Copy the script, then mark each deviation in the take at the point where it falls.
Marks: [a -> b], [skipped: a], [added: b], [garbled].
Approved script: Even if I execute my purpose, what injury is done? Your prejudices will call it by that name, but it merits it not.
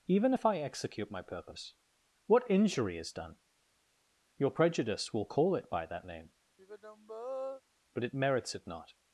Even if I execute my purpose, what injury is done? Your [prejudices -> prejudice] will call it by that name, but it merits it not.